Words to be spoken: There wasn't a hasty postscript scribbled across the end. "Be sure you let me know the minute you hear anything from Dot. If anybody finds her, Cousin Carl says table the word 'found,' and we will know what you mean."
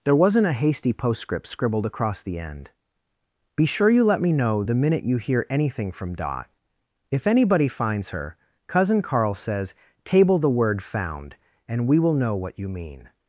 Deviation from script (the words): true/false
false